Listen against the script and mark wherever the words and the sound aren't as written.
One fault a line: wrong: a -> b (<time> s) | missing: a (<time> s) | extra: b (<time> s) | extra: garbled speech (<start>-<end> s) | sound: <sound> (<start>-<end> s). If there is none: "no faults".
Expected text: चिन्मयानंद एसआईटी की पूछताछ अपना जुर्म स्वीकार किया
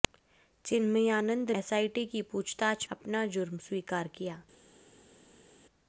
no faults